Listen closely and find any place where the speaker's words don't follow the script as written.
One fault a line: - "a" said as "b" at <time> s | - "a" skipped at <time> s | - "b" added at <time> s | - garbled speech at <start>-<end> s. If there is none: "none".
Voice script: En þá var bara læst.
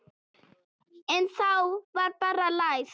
none